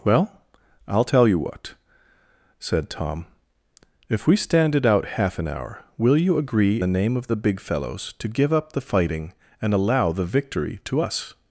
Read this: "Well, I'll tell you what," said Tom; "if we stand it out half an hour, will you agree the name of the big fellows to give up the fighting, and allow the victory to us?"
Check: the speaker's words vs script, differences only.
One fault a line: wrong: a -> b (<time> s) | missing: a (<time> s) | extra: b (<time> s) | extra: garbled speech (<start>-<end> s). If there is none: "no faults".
no faults